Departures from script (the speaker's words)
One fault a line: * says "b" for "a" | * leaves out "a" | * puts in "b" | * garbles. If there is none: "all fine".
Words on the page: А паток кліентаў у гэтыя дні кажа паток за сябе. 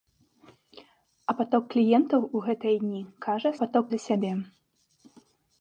all fine